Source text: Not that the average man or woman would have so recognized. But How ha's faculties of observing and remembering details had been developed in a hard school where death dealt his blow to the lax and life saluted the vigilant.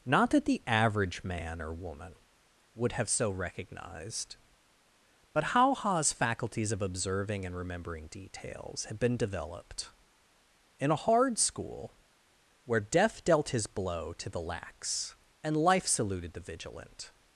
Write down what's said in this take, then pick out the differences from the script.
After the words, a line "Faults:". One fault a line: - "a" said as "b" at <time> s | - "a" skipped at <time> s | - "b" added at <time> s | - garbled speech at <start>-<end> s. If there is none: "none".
Not that the average man or woman would have so recognized. But How ha's faculties of observing and remembering details had been developed in a hard school where death dealt his blow to the lax and life saluted the vigilant.
Faults:
none